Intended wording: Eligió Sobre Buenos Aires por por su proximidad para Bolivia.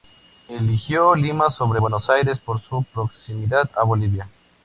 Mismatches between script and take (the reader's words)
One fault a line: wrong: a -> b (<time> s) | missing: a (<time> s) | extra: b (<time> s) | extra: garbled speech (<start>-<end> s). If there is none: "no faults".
extra: Lima (1.1 s)
missing: por (2.6 s)
wrong: para -> a (3.7 s)